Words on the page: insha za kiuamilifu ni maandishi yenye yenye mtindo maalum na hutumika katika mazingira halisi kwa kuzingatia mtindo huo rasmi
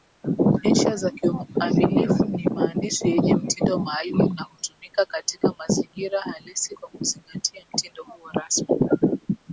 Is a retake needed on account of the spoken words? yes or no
yes